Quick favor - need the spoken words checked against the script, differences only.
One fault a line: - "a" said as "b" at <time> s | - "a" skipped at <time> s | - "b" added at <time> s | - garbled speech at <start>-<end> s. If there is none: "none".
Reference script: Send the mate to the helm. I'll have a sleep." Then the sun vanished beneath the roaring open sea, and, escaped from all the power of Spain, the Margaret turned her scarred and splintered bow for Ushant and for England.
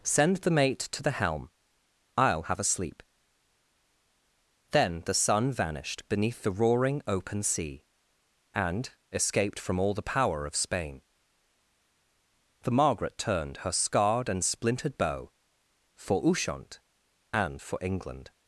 none